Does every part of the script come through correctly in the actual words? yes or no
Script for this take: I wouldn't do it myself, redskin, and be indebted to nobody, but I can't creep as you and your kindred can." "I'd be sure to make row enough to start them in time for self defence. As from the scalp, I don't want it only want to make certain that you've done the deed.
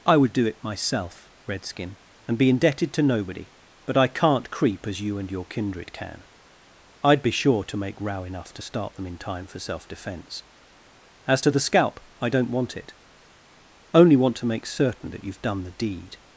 no